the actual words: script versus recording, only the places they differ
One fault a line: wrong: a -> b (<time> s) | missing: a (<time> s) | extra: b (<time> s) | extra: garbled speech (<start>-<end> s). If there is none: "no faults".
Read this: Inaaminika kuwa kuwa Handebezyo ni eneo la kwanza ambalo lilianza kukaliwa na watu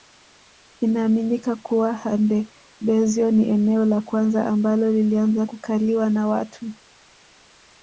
missing: kuwa (1.9 s)